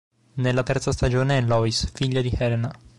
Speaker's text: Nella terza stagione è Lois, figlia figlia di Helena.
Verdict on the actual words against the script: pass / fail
fail